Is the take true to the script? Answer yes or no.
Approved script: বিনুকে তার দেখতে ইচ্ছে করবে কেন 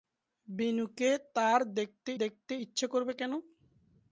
no